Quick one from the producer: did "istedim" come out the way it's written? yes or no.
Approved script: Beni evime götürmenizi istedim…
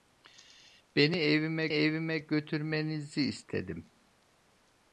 yes